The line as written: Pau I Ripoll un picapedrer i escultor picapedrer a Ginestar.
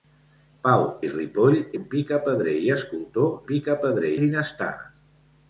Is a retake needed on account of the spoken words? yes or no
no